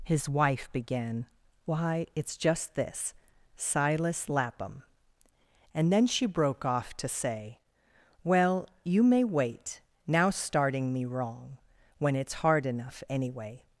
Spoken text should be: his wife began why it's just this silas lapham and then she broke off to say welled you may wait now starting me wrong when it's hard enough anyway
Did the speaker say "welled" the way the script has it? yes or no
no